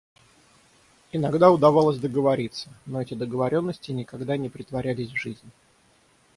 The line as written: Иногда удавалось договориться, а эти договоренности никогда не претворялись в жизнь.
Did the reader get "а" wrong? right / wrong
wrong